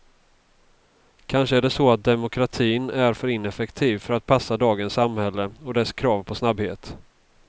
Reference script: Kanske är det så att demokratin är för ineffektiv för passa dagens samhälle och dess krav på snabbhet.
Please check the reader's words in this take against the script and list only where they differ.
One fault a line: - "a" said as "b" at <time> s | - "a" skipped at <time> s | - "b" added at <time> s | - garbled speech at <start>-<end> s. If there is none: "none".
- "att" added at 4.1 s